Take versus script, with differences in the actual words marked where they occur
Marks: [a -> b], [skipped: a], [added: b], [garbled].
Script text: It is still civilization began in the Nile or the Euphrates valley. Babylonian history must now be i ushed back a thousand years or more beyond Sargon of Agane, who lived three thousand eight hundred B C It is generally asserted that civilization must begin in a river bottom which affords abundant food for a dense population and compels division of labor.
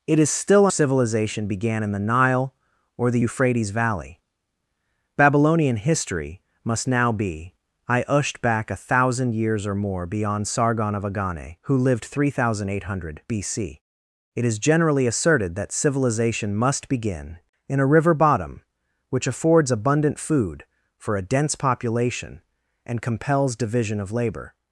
It is still civilization began in the Nile or the Euphrates valley. Babylonian history must now be i ushed back a thousand years or more beyond Sargon of Agane, who lived three thousand eight hundred B C It is generally asserted that civilization must begin in a river bottom which affords abundant food for a dense population and compels division of labor.